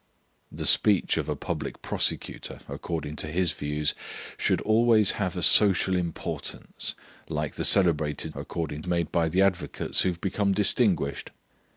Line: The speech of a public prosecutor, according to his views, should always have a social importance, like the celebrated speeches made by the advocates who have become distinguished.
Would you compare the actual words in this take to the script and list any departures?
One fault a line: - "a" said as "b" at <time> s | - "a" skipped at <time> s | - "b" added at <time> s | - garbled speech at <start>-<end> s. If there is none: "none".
- "speeches" said as "according" at 8.4 s